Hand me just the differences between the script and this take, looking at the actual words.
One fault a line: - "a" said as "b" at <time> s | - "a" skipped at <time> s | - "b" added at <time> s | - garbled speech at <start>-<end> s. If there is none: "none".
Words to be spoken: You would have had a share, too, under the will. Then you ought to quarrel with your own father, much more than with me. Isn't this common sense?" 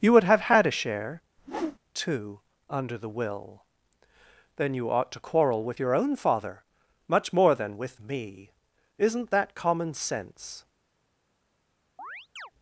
- "this" said as "that" at 9.3 s